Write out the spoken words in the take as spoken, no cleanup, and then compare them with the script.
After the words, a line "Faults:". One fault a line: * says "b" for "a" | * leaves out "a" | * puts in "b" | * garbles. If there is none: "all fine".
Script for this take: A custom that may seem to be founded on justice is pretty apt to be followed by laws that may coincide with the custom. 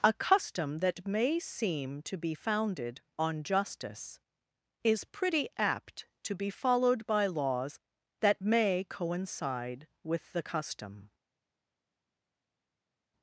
A custom that may seem to be founded on justice is pretty apt to be followed by laws that may coincide with the custom.
Faults:
all fine